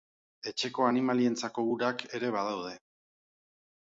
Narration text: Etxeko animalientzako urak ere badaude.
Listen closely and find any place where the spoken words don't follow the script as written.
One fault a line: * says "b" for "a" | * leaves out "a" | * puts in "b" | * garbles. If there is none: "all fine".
all fine